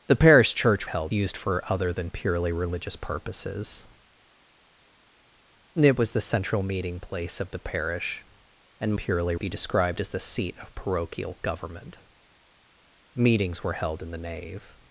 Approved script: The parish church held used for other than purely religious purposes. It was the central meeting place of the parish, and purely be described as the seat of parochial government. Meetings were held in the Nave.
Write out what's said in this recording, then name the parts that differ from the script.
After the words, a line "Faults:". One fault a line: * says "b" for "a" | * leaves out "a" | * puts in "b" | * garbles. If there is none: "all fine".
The parish church held used for other than purely religious purposes. It was the central meeting place of the parish, and purely be described as the seat of parochial government. Meetings were held in the Nave.
Faults:
all fine